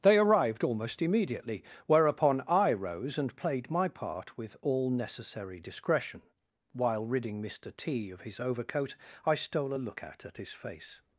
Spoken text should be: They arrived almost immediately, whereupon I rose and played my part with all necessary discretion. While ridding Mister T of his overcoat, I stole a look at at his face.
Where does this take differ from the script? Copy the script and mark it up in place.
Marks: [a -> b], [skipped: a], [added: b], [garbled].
They arrived almost immediately, whereupon I rose and played my part with all necessary discretion. While ridding Mister T of his overcoat, I stole a look at at his face.